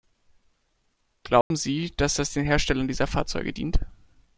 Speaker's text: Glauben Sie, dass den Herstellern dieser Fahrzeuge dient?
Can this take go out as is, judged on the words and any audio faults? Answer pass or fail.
fail